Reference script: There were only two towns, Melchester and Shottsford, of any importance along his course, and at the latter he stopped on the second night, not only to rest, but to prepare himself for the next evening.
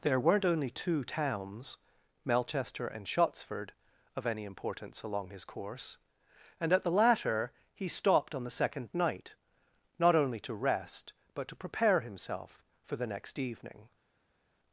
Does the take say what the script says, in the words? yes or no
no